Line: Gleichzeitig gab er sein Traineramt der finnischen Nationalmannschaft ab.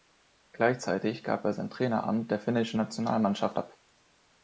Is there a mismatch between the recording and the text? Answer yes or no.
no